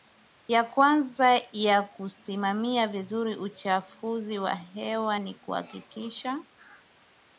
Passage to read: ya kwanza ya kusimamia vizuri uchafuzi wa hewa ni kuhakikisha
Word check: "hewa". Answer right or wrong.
right